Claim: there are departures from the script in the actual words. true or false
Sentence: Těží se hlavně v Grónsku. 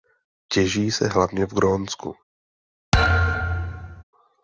false